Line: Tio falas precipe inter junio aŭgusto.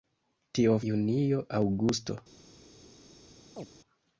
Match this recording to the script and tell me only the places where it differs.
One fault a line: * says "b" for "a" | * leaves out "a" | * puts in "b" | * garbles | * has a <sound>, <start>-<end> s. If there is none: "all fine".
* leaves out "falas precipe inter"
* has a chirp, 3.6-3.7 s